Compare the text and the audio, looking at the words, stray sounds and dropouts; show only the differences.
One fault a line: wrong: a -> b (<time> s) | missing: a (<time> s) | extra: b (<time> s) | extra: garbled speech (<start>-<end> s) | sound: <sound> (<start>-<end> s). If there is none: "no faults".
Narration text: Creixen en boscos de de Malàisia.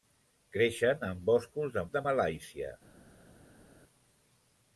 no faults